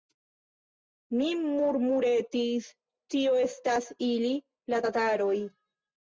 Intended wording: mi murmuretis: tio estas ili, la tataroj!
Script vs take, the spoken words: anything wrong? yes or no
no